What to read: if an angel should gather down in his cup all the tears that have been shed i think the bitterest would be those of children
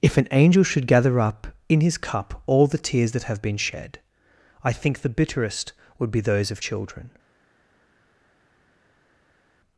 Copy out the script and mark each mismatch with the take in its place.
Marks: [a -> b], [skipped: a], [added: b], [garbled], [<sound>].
if an angel should gather [down -> up] in his cup all the tears that have been shed i think the bitterest would be those of children